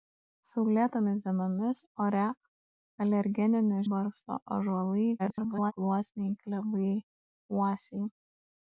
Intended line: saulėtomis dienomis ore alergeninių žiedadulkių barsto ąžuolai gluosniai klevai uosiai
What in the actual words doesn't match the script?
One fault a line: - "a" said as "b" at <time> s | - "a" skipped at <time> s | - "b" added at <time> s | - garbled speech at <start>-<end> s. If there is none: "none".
- "žiedadulkių" skipped at 3.8 s
- garbled speech at 5.2-5.7 s